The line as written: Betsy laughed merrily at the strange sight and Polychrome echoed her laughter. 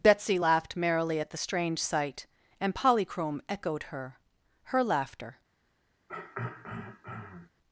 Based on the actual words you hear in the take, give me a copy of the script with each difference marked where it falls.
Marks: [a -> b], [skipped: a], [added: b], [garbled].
Betsy laughed merrily at the strange sight and Polychrome echoed her [added: her] laughter.